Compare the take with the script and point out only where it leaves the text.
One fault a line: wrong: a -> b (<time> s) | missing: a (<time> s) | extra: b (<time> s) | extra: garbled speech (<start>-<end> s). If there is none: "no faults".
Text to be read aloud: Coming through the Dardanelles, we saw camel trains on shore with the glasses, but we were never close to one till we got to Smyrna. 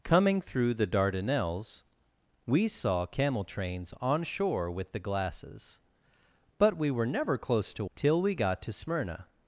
missing: one (7.8 s)